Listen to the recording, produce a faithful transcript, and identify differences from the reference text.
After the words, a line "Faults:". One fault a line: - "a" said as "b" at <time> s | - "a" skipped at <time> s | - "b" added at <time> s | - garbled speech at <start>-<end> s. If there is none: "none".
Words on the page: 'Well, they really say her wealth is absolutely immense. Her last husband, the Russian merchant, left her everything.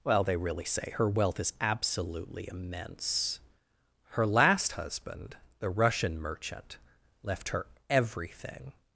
'Well, they really say her wealth is absolutely immense. Her last husband, the Russian merchant, left her everything.
Faults:
none